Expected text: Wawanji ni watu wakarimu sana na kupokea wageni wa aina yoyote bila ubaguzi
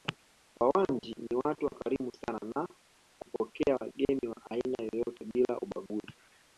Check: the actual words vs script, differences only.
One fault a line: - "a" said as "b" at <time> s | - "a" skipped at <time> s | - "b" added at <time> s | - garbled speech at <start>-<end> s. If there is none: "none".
none